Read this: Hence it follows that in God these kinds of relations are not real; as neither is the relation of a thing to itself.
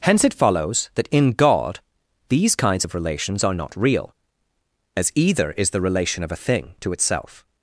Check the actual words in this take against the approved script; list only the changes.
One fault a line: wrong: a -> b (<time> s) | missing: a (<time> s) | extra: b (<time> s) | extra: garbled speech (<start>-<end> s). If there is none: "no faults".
wrong: neither -> either (5.1 s)